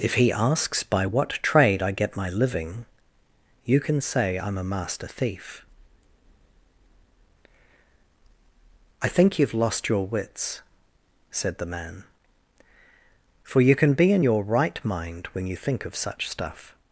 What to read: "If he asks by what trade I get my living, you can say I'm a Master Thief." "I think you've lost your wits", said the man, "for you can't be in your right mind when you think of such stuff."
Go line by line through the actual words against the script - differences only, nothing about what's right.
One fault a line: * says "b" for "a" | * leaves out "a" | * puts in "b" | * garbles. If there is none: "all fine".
* says "can" for "can't"